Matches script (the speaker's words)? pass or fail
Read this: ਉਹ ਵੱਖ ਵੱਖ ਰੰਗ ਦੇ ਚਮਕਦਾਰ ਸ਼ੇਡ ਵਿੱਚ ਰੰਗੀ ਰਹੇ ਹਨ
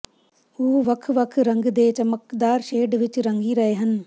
pass